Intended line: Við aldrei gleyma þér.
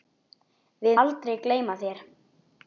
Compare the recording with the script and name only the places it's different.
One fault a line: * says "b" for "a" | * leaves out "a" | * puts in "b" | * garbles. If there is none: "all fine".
all fine